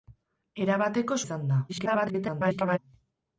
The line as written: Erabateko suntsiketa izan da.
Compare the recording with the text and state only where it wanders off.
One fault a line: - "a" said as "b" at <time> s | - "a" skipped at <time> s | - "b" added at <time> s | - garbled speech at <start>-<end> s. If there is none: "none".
- "suntsiketa" skipped at 1.2 s
- garbled speech at 1.7-2.8 s